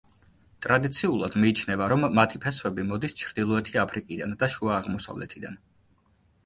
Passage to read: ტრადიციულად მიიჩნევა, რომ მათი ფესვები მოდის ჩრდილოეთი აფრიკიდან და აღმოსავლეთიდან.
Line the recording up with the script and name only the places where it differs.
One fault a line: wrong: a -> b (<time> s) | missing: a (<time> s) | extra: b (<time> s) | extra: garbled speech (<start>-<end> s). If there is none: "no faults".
extra: შუა (4.6 s)